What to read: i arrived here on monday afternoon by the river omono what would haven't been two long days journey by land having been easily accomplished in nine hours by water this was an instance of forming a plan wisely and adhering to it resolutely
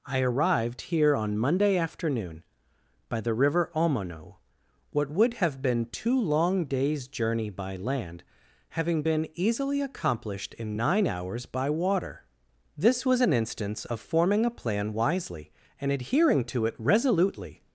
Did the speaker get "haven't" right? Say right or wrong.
wrong